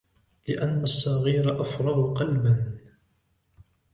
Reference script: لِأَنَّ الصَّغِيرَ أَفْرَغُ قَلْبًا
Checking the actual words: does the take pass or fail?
pass